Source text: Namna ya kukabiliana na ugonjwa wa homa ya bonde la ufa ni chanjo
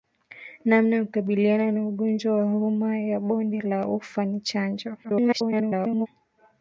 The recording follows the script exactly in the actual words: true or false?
false